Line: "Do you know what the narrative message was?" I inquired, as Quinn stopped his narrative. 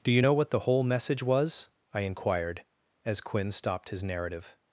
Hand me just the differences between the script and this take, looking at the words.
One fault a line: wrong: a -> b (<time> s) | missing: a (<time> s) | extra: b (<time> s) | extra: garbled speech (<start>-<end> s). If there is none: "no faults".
wrong: narrative -> whole (0.6 s)